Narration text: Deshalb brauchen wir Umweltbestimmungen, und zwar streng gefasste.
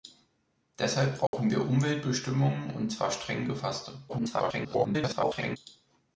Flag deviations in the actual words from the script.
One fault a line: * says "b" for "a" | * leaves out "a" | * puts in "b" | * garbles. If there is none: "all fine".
* garbles